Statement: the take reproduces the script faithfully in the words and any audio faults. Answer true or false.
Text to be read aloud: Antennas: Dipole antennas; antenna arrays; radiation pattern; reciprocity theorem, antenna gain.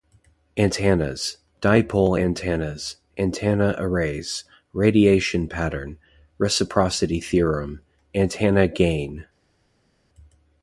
true